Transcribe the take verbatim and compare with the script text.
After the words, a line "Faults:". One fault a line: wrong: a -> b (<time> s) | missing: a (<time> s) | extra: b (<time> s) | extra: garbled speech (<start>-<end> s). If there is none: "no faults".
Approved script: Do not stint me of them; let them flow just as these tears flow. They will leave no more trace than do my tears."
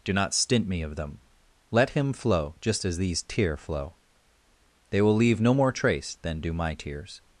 Do not stint me of them; let him flow just as these tear flow. They will leave no more trace than do my tears."
Faults:
wrong: them -> him (1.9 s)
wrong: tears -> tear (3.2 s)